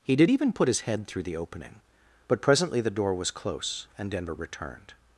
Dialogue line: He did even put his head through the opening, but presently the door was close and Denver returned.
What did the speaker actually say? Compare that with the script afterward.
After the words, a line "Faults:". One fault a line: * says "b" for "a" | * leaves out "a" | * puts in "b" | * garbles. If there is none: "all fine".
He did even put his head through the opening, but presently the door was close and Denver returned.
Faults:
all fine